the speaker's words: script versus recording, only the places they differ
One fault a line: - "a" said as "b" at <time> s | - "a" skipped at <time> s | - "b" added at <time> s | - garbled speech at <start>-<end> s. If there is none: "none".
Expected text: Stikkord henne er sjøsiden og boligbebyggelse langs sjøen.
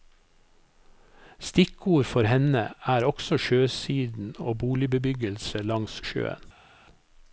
- "for" added at 2.0 s
- "også" added at 3.0 s